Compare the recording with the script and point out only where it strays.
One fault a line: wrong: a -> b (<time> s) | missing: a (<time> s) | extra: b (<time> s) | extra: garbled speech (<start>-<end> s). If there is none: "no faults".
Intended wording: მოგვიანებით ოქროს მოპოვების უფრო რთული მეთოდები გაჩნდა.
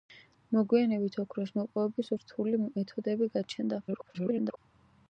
missing: უფრო (2.1 s)
extra: garbled speech (3.9-4.6 s)